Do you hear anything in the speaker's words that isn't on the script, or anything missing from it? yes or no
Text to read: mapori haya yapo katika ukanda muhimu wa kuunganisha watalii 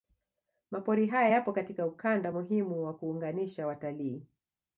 no